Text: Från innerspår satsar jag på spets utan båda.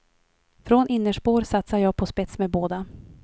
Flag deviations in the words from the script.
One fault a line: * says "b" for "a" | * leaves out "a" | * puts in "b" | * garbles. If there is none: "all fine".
* says "med" for "utan"